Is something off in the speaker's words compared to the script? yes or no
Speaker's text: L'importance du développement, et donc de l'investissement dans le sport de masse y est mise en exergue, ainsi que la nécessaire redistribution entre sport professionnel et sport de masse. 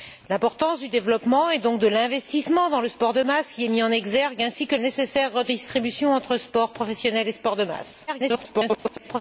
yes